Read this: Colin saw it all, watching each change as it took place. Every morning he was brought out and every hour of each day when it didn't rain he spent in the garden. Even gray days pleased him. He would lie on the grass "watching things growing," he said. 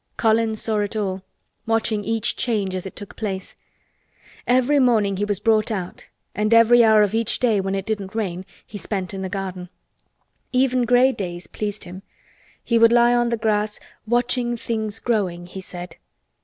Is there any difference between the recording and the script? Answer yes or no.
no